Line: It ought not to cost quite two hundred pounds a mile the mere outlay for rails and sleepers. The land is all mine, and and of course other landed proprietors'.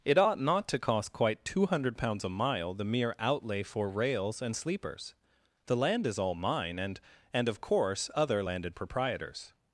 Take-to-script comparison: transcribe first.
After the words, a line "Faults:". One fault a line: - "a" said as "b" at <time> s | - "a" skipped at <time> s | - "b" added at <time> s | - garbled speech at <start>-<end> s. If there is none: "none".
It ought not to cost quite two hundred pounds a mile the mere outlay for rails and sleepers. The land is all mine, and and of course other landed proprietors'.
Faults:
none